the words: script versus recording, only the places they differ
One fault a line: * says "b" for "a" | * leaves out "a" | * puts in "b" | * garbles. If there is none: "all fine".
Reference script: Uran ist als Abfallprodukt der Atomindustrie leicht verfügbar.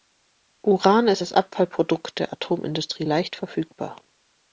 all fine